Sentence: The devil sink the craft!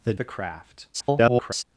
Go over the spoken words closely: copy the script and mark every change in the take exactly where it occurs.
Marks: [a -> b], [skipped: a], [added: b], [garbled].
The [skipped: devil sink] the craft! [garbled]